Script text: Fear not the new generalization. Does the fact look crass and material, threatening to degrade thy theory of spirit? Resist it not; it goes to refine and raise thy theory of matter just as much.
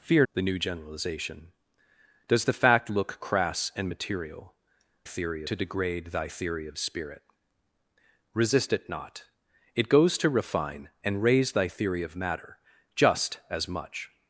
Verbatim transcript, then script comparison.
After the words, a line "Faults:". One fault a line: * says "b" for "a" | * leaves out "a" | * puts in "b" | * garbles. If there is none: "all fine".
Fear the new generalization. Does the fact look crass and material, theory to degrade thy theory of spirit? Resist it not; it goes to refine and raise thy theory of matter just as much.
Faults:
* leaves out "not"
* says "theory" for "threatening"